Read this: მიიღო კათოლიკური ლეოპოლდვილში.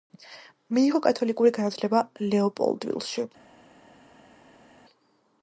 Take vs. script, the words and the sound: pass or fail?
fail